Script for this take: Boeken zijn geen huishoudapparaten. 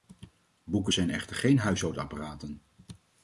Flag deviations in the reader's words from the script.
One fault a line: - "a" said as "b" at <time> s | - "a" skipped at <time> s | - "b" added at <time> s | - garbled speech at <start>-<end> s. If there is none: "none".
- "echter" added at 1.1 s